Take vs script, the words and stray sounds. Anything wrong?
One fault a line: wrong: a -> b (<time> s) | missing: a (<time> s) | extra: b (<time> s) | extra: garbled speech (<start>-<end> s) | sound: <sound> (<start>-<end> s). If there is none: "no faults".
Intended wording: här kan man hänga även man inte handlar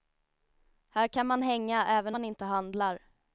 no faults